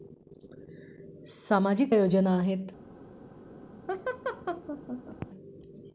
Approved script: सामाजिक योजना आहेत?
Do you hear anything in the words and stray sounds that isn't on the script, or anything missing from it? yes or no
yes